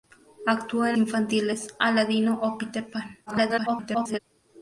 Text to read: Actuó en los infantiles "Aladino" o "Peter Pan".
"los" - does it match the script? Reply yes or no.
no